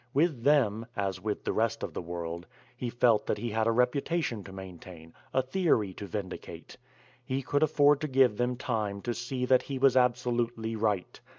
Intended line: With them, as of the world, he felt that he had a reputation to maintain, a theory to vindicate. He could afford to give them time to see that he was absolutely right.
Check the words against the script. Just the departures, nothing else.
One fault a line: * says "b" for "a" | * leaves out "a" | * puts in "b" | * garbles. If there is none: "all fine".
* puts in "with the rest"